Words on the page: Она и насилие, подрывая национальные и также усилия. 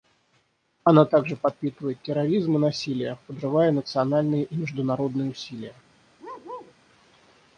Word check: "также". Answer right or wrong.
wrong